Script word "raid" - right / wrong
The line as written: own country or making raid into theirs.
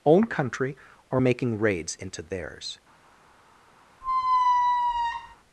wrong